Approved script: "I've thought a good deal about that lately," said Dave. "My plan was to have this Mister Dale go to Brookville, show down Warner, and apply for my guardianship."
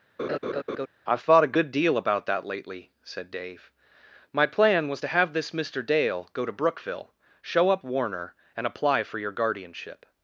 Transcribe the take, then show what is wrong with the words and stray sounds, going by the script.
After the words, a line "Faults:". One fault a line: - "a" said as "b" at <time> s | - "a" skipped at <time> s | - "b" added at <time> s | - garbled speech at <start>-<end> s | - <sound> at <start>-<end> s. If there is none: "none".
"I've thought a good deal about that lately," said Dave. "My plan was to have this Mister Dale go to Brookville, show up Warner, and apply for your guardianship."
Faults:
- laugh at 0.2-0.9 s
- "down" said as "up" at 7.7 s
- "my" said as "your" at 9.2 s